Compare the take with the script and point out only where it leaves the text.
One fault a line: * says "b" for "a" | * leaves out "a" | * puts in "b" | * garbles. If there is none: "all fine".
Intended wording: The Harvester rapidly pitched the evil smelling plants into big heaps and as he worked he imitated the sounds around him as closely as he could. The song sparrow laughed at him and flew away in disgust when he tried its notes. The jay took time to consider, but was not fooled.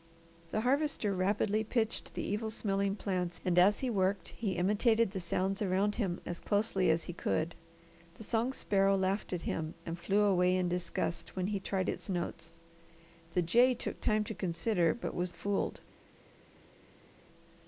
* leaves out "into big heaps"
* leaves out "not"